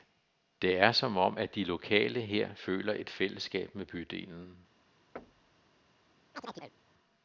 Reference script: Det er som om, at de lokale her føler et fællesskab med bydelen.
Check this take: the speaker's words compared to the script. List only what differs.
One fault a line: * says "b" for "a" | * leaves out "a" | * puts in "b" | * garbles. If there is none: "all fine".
all fine